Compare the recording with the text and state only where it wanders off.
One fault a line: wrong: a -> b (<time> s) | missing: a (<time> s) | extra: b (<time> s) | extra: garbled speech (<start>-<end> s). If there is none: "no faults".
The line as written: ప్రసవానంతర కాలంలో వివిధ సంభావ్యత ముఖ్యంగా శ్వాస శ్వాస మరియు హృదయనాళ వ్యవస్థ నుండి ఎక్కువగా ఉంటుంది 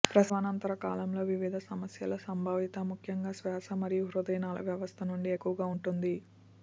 extra: సమస్యల (1.6 s)
missing: శ్వాస (3.8 s)